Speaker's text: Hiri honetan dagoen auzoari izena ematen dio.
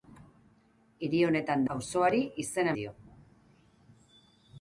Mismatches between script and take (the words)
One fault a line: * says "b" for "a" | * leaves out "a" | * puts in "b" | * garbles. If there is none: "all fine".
* leaves out "dagoen"
* leaves out "ematen"